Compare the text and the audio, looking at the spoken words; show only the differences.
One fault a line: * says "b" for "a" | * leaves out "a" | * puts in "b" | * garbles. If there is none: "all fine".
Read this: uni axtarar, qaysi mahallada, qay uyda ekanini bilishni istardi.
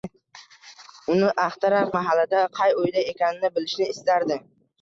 * leaves out "qaysi"